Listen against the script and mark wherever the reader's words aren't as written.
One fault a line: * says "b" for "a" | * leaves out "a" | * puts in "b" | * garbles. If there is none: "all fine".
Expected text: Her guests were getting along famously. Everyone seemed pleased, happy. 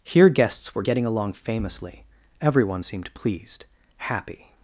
* says "Here" for "Her"